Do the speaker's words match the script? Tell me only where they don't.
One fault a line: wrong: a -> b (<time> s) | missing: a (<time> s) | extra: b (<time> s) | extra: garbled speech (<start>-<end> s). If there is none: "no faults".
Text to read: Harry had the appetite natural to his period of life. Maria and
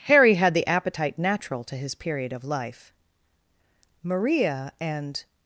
no faults